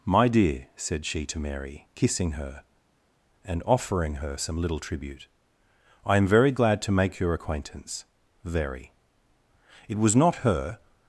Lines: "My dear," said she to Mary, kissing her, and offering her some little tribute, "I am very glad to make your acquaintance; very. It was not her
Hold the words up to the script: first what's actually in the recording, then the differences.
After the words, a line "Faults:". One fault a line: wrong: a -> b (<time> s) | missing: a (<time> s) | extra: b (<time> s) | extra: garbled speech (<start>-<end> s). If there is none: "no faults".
"My dear," said she to Mary, kissing her, and offering her some little tribute, "I am very glad to make your acquaintance; very. It was not her
Faults:
no faults